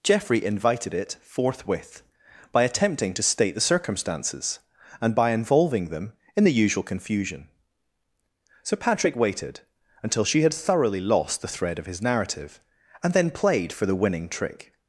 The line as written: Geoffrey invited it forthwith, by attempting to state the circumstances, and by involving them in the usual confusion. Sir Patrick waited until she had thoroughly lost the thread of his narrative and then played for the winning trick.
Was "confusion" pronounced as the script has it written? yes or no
yes